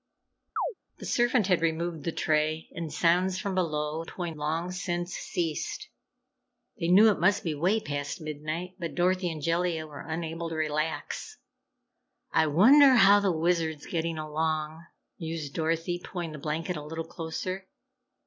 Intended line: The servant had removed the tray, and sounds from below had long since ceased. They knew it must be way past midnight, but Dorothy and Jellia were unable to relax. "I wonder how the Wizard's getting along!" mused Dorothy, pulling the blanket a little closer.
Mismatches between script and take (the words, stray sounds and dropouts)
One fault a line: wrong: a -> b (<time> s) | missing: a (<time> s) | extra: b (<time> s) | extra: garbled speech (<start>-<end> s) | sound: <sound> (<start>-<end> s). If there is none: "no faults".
sound: chirp (0.6-0.7 s)
wrong: had -> pulling (4.1 s)